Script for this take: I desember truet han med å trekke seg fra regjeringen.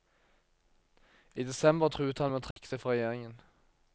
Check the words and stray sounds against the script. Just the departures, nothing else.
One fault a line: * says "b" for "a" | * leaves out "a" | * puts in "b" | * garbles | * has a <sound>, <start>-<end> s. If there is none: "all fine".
* has a dropout, 2.5-2.6 s